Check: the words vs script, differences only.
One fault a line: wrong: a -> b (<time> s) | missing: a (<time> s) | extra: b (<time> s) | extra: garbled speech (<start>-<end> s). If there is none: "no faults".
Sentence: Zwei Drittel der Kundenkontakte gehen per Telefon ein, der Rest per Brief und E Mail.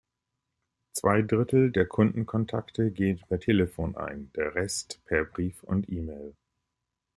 no faults